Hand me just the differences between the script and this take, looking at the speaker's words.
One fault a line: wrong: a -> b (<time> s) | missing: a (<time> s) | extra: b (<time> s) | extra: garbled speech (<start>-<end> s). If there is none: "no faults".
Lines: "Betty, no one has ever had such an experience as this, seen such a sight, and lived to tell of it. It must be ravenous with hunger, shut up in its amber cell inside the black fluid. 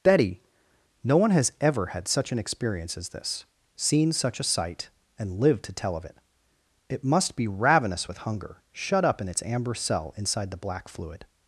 no faults